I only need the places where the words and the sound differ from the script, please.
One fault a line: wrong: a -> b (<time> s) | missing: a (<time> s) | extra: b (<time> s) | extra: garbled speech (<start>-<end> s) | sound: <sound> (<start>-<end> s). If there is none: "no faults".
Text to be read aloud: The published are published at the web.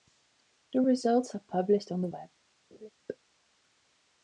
wrong: published -> results (0.8 s)
wrong: at -> on (1.9 s)
sound: laugh (2.7-2.9 s)